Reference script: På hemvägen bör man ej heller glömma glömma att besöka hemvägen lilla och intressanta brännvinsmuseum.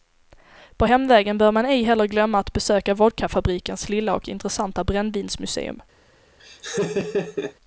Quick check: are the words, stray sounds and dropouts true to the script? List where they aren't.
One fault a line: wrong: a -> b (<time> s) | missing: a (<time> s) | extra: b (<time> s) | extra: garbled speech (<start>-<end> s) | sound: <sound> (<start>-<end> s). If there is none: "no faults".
missing: glömma (2.4 s)
wrong: hemvägen -> vodkafabrikens (2.9 s)
sound: laugh (6.4-7.5 s)